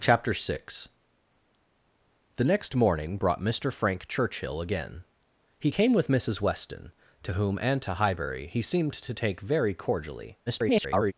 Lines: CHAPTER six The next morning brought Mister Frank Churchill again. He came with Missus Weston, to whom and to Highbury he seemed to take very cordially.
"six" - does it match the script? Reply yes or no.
yes